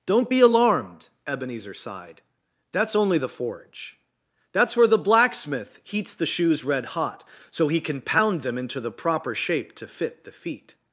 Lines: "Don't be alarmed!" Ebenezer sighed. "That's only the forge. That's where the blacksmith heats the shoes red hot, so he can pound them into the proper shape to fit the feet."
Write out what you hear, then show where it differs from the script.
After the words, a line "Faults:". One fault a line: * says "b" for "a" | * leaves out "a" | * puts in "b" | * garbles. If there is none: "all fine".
"Don't be alarmed!" Ebenezer sighed. "That's only the forge. That's where the blacksmith heats the shoes red hot, so he can pound them into the proper shape to fit the feet."
Faults:
all fine